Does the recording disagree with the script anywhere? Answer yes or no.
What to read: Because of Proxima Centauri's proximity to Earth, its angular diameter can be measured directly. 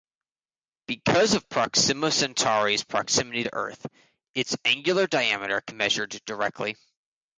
yes